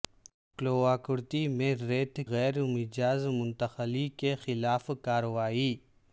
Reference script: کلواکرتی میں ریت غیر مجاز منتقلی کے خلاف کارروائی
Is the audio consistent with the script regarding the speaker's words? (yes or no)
yes